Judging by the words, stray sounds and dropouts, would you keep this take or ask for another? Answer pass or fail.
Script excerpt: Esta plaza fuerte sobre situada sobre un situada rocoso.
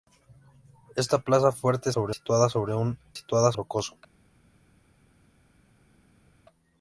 pass